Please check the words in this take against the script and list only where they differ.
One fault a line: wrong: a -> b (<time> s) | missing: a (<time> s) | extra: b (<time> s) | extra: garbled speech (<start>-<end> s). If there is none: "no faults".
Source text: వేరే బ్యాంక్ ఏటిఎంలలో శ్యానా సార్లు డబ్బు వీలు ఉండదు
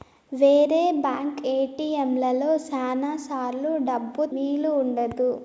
no faults